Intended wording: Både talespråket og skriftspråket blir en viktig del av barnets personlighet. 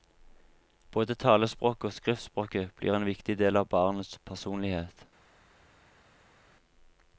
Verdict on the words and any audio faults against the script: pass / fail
pass